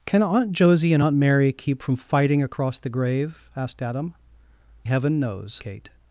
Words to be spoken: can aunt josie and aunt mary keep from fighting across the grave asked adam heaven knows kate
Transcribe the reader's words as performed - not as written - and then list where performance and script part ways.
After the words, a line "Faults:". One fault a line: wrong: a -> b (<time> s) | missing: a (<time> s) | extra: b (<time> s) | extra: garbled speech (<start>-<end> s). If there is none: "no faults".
can aunt josie and aunt mary keep from fighting across the grave asked adam heaven knows kate
Faults:
no faults